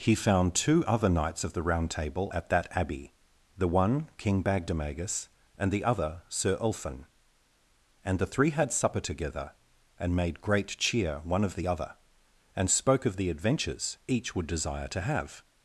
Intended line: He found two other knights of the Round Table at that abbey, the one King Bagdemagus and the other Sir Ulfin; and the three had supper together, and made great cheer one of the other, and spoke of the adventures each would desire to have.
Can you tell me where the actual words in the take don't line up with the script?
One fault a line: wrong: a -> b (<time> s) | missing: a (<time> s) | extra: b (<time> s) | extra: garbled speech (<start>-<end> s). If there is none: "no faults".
no faults